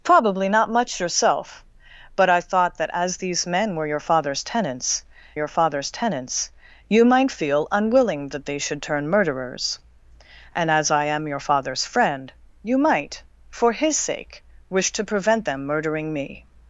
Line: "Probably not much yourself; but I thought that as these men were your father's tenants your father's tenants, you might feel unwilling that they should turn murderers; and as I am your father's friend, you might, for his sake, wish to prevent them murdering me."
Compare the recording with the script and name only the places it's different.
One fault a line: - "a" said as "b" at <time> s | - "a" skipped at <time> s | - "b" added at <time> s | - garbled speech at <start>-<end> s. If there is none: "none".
none